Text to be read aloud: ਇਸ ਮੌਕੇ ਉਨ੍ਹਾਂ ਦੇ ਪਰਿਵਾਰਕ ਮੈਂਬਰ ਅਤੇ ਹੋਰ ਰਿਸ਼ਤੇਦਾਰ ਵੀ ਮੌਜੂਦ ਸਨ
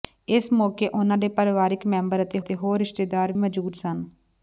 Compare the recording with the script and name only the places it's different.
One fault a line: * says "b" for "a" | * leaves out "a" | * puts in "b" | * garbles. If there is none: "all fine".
* puts in "ਅਤੇ"
* leaves out "ਵੀ"